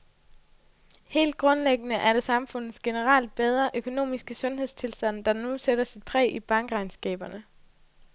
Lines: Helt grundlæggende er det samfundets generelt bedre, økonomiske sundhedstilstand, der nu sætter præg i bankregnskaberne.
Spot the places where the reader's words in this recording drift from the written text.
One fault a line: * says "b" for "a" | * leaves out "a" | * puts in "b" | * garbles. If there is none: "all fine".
* puts in "sit"